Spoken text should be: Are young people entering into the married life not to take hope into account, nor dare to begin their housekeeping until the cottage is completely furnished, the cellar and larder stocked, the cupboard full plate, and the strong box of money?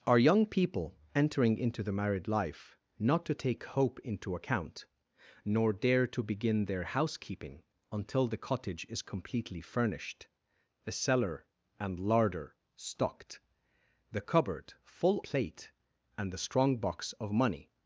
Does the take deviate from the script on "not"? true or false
false